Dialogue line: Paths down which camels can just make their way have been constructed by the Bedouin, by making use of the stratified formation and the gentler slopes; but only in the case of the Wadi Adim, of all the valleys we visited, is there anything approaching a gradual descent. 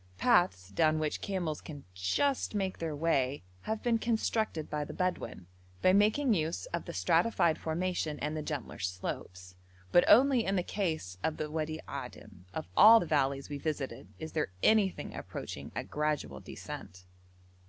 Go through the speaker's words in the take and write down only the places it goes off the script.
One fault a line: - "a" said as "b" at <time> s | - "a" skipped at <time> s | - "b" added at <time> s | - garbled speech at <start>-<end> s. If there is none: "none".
none